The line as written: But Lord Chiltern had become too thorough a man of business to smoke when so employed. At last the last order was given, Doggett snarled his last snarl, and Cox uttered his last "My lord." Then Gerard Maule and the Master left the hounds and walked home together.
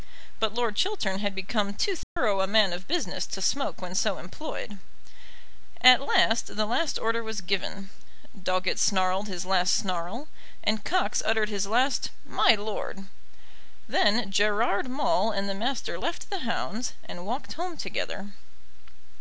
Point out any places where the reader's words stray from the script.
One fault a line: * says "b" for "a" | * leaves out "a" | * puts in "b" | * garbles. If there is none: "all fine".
all fine